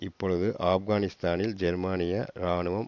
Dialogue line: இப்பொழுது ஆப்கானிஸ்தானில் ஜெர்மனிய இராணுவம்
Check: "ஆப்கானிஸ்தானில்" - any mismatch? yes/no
no